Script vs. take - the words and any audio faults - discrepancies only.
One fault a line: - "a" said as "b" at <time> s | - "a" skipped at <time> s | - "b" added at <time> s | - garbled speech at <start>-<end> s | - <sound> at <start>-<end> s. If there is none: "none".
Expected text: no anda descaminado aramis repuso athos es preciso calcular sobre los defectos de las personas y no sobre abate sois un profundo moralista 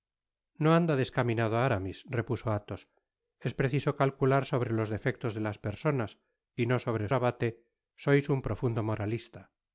none